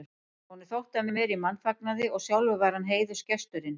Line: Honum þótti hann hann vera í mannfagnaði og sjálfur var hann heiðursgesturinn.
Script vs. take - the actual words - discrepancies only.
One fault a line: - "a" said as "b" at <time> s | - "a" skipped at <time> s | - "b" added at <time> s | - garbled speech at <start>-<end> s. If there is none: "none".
none